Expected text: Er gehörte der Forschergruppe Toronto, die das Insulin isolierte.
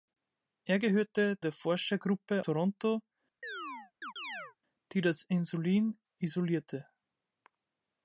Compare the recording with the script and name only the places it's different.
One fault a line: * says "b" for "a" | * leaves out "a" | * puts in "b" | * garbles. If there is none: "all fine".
all fine